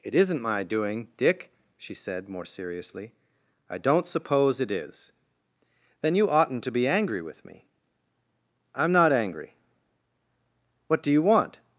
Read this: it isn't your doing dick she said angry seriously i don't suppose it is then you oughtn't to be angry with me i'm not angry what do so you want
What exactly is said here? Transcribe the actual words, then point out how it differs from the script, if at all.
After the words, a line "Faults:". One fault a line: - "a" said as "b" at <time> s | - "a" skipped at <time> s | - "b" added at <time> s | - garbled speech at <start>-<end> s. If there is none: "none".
it isn't my doing dick she said more seriously i don't suppose it is then you oughtn't to be angry with me i'm not angry what do you want
Faults:
- "your" said as "my" at 0.4 s
- "angry" said as "more" at 2.3 s
- "so" skipped at 11.1 s